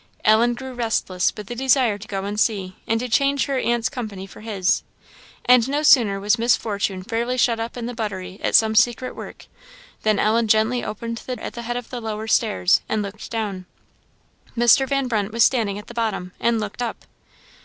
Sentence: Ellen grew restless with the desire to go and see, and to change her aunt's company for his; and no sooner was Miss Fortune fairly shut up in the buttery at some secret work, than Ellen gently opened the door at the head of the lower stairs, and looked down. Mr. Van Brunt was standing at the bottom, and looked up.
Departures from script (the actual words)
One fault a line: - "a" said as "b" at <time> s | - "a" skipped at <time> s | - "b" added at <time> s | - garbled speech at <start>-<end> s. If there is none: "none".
- "door" skipped at 11.3 s